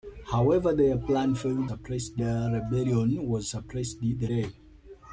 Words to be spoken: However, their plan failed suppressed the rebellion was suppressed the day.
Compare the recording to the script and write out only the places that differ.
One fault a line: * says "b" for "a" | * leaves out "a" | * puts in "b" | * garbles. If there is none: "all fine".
all fine